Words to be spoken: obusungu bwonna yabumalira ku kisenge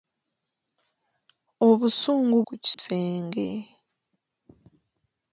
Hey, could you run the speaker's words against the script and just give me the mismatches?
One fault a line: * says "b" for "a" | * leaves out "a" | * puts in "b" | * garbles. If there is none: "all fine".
* leaves out "bwonna yabumalira"